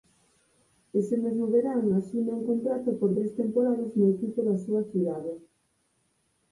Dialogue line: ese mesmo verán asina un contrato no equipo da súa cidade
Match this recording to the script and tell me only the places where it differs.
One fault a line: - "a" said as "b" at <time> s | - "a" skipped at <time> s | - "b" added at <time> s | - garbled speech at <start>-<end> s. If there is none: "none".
- "por tres temporadas" added at 3.0 s